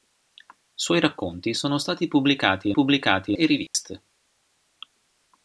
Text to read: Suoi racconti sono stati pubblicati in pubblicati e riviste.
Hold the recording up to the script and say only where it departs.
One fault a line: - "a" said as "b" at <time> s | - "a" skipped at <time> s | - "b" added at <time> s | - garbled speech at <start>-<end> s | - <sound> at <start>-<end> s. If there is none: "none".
- dropout at 3.7-3.7 s